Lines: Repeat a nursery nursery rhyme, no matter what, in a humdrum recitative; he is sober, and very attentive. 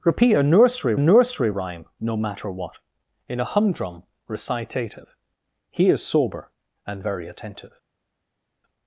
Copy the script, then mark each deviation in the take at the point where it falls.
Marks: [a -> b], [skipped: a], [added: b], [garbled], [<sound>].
Repeat a nursery nursery rhyme, no matter what, in a humdrum recitative; he is sober, and very attentive.